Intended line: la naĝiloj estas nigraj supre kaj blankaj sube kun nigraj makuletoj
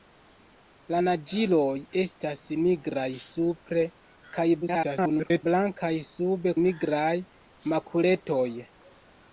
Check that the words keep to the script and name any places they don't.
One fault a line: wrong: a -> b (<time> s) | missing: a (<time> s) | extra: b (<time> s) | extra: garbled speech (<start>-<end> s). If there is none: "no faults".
extra: garbled speech (4.6-5.4 s)
missing: kun (6.5 s)